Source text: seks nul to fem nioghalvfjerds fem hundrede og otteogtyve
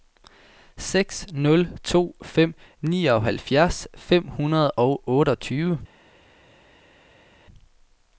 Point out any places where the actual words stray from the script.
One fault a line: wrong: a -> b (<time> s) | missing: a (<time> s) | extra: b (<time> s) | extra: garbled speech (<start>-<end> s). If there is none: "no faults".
no faults